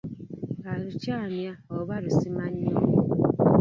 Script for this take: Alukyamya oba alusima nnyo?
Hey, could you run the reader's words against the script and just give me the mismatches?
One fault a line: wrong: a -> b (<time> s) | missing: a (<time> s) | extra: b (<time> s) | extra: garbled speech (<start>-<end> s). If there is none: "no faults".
no faults